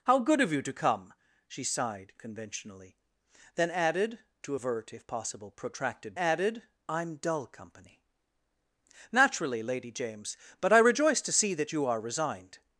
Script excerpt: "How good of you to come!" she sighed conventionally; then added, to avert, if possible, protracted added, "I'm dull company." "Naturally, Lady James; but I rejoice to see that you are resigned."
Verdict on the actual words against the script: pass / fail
pass